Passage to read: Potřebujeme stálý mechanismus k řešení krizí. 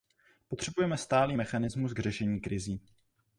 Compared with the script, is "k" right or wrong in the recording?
right